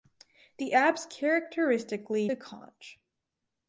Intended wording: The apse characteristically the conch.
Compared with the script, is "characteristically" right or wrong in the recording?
right